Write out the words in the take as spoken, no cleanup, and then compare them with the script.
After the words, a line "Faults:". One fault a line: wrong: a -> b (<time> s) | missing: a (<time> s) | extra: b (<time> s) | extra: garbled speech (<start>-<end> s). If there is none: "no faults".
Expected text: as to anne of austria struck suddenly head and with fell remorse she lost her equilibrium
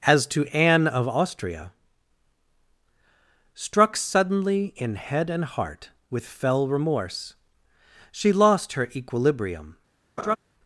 as to anne of austria struck suddenly in head and heart with fell remorse she lost her equilibrium
Faults:
extra: in (4.8 s)
extra: heart (5.5 s)